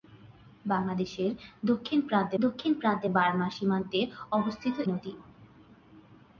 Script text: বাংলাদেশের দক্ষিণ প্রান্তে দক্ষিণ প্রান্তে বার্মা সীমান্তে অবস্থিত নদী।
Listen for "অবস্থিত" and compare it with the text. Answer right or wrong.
right